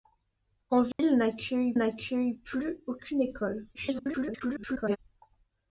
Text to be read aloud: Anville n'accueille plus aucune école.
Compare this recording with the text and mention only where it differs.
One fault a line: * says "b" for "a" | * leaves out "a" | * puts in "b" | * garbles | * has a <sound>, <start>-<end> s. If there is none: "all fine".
* has a dropout, 0.9-1.0 s
* puts in "n'accueille"
* garbles